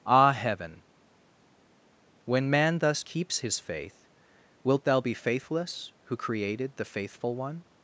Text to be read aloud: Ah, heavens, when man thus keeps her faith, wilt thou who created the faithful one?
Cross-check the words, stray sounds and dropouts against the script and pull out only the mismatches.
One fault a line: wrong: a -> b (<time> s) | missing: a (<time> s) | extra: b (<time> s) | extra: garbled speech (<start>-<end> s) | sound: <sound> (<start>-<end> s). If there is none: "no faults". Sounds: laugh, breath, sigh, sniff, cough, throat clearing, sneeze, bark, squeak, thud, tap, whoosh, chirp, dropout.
wrong: heavens -> heaven (0.3 s)
wrong: her -> his (3.4 s)
extra: be faithless (5.0 s)